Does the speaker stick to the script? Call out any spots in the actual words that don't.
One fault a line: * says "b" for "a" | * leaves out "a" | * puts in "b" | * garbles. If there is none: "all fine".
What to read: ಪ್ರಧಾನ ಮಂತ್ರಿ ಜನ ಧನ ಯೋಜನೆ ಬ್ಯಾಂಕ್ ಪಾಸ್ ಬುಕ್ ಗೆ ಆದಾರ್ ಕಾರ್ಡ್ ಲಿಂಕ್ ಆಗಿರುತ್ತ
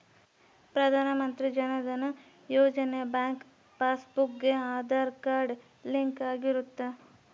all fine